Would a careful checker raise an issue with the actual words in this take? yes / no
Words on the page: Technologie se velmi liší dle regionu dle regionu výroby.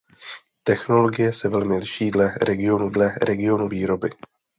no